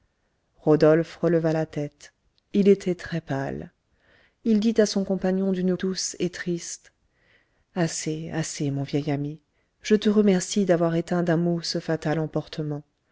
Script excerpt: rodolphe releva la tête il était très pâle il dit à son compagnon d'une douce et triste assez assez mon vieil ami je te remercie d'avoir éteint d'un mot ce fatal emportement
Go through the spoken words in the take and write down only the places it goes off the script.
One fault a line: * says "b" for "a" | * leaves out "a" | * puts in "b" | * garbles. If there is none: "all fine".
all fine